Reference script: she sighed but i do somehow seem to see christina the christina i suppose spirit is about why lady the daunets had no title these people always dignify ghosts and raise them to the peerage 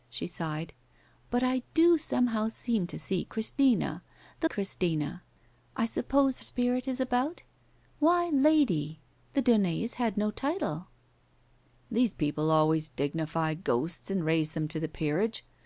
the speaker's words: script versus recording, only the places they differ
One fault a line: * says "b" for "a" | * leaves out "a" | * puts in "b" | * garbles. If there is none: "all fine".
all fine